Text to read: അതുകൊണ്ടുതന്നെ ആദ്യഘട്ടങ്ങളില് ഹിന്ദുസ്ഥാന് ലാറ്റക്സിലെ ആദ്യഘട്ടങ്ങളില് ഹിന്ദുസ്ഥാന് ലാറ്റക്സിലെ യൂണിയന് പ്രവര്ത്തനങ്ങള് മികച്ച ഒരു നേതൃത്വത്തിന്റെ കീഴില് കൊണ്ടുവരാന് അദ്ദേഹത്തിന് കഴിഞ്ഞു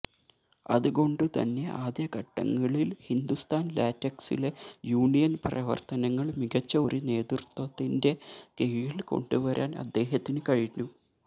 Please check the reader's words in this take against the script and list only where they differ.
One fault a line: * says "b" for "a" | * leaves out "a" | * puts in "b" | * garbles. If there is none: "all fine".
* leaves out "ആദ്യഘട്ടങ്ങളില് ഹിന്ദുസ്ഥാന് ലാറ്റക്സിലെ"